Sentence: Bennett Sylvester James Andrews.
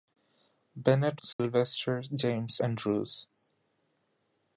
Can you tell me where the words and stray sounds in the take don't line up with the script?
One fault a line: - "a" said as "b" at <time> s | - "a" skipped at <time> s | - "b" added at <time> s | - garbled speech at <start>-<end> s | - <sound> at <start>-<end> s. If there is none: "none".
- dropout at 1.3-1.4 s